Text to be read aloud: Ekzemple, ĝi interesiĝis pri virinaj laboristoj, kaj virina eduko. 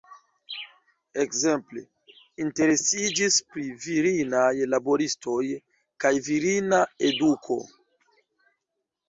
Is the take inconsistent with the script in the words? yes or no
yes